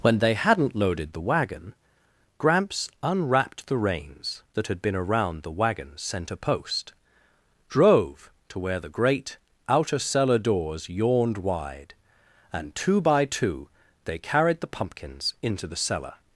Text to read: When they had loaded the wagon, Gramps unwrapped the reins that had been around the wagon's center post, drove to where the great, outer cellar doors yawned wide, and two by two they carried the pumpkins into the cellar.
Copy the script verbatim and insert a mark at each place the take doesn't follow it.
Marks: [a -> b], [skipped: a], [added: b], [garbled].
When they [had -> hadn't] loaded the wagon, Gramps unwrapped the reins that had been around the wagon's center post, drove to where the great, outer cellar doors yawned wide, and two by two they carried the pumpkins into the cellar.